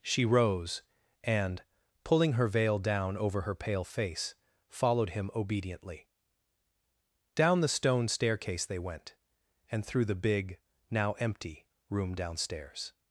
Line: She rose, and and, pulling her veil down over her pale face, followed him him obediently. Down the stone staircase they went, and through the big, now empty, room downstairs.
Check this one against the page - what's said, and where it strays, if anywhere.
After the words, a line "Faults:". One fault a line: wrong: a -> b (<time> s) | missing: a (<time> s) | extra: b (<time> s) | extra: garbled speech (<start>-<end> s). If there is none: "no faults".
She rose, and, pulling her veil down over her pale face, followed him obediently. Down the stone staircase they went, and through the big, now empty, room downstairs.
Faults:
missing: and (1.6 s)
missing: him (5.3 s)